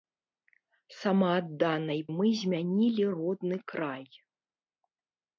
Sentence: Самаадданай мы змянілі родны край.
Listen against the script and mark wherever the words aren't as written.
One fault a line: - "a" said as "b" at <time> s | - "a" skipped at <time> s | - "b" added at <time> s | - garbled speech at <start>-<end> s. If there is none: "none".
none